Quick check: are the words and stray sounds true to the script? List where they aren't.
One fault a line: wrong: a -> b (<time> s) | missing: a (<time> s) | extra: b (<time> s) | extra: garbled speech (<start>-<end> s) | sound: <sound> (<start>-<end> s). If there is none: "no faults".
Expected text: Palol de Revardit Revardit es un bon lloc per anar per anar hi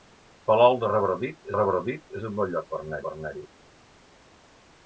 no faults